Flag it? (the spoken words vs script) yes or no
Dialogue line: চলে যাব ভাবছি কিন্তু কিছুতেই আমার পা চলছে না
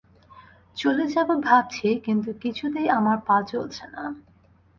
no